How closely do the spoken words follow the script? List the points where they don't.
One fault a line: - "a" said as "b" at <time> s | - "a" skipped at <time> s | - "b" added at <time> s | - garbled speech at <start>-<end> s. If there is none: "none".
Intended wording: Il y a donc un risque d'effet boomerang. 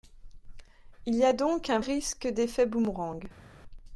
none